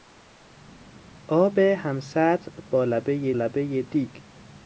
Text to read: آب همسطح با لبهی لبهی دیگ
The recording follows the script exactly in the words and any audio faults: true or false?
true